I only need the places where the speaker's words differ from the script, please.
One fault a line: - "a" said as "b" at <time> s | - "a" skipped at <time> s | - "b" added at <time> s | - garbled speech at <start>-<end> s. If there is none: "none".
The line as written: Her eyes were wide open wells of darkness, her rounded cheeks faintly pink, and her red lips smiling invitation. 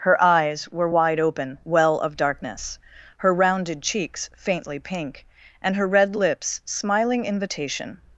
- "wells" said as "well" at 1.6 s